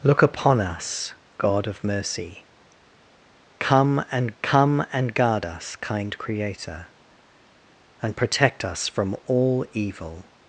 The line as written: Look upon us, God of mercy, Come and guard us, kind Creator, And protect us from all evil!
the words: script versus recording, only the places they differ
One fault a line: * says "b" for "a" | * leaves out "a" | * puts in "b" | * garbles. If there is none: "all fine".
* puts in "Come and"